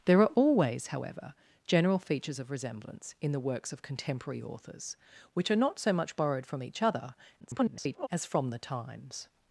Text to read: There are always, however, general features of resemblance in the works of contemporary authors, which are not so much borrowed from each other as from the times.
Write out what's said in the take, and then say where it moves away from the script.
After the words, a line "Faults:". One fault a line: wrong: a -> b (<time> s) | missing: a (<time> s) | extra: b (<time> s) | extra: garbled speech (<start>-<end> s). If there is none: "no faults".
There are always, however, general features of resemblance in the works of contemporary authors, which are not so much borrowed from each other [garbled] as from the times.
Faults:
extra: garbled speech (7.4-8.1 s)